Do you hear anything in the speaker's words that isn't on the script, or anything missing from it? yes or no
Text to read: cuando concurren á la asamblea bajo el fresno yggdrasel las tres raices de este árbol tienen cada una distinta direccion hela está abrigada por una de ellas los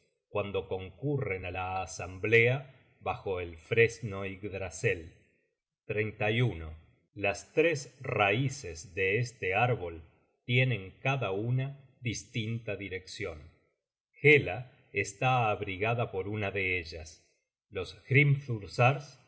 no